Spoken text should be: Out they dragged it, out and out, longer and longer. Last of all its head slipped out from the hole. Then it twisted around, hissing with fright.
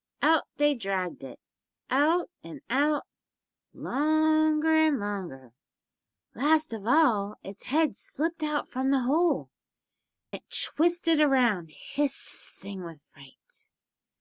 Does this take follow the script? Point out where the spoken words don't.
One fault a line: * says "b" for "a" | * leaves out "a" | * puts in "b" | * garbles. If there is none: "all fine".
* leaves out "Then"